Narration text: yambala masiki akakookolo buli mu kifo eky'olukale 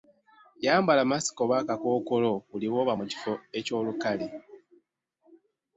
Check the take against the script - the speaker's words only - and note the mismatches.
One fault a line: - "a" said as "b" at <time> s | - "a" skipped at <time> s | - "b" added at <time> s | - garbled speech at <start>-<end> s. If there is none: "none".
- "oba" added at 1.4 s
- "lw'oba" added at 2.7 s